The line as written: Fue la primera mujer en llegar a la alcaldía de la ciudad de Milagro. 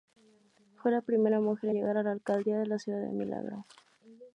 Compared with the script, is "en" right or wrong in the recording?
wrong